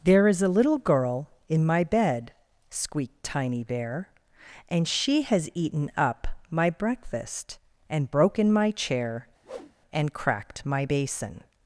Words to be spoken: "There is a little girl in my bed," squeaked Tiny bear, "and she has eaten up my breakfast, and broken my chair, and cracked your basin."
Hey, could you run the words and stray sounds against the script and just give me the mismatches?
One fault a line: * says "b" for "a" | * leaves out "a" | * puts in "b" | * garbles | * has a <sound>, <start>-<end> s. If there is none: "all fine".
* has a whoosh, 9.4-9.7 s
* says "my" for "your"